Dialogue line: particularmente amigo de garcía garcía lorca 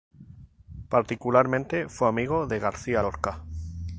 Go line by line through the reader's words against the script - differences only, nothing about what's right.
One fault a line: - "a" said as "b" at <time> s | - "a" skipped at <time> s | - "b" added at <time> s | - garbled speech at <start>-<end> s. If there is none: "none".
- "fue" added at 1.9 s
- "garcía" skipped at 3.0 s